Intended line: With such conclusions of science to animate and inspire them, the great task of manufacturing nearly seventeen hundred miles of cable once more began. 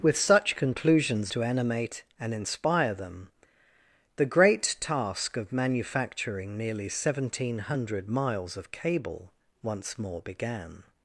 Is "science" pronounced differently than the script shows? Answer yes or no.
yes